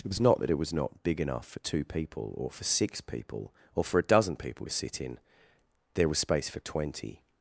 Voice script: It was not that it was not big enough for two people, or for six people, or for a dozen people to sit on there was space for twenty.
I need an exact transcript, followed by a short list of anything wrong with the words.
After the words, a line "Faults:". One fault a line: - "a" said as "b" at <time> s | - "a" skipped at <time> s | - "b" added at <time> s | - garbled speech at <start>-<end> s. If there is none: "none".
It was not that it was not big enough for two people, or for six people, or for a dozen people to sit in there was space for twenty.
Faults:
- "on" said as "in" at 5.0 s